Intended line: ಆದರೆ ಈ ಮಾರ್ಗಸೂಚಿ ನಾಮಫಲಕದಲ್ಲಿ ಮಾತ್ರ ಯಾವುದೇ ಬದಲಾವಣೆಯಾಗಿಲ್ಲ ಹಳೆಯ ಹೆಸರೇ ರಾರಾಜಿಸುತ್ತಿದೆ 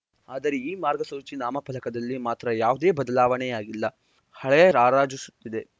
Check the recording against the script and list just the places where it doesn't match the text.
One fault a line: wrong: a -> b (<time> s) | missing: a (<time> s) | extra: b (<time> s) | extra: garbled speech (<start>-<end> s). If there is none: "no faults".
missing: ಹೆಸರೇ (4.7 s)